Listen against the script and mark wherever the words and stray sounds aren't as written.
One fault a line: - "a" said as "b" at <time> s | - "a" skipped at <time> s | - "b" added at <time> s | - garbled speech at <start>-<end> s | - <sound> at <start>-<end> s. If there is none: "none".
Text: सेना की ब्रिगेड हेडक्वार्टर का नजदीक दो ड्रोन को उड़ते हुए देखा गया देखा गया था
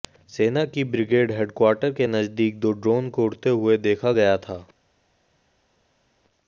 - "का" said as "के" at 1.9 s
- "देखा गया" skipped at 4.4 s